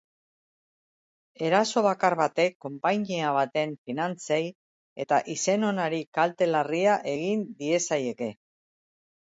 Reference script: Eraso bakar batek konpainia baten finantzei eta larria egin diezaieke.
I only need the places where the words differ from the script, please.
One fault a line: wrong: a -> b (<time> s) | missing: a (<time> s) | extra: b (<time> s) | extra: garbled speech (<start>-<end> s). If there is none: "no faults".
extra: izen onari kalte (5.4 s)